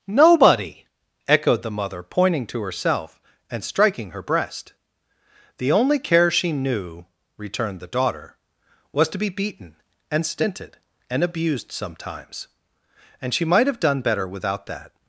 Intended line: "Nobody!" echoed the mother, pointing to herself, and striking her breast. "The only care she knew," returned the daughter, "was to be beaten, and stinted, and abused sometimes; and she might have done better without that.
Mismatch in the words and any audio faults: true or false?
false